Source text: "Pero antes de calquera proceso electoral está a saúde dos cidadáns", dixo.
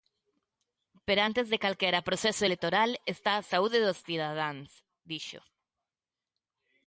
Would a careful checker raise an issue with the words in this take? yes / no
no